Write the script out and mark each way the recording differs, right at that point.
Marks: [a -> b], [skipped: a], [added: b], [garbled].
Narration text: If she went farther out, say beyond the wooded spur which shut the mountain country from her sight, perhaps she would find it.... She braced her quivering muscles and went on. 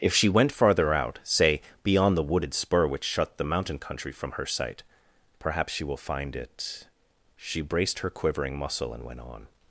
If she went farther out, say beyond the wooded spur which shut the mountain country from her sight, perhaps she [would -> will] find it.... She braced her quivering [muscles -> muscle] and went on.